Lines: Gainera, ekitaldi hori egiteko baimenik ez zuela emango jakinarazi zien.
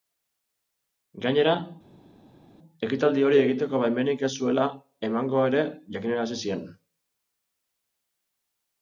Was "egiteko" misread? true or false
false